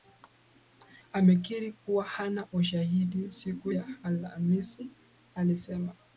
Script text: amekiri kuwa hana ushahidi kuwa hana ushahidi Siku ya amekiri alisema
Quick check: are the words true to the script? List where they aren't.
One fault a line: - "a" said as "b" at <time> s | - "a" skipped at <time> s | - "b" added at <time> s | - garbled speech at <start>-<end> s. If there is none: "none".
- "kuwa hana ushahidi" skipped at 3.3 s
- "amekiri" said as "alhamisi" at 4.0 s